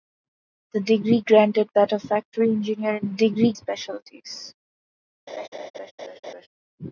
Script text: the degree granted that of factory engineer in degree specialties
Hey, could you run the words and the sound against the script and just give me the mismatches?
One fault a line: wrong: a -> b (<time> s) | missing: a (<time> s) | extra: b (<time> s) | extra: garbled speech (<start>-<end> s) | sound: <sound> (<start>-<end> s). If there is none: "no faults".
sound: laugh (5.3-6.5 s)